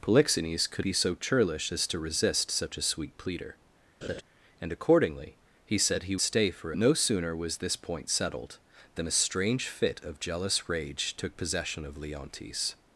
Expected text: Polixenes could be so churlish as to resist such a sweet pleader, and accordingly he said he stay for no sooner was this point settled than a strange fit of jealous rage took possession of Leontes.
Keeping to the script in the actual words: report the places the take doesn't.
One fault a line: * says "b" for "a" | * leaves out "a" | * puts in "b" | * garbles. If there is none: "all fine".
all fine